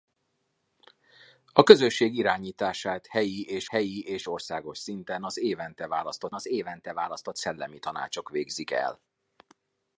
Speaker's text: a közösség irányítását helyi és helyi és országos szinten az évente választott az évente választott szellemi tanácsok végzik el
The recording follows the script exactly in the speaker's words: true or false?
true